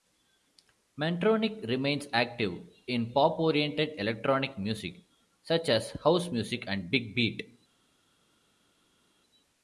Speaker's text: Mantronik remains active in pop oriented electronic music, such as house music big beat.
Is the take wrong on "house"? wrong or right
right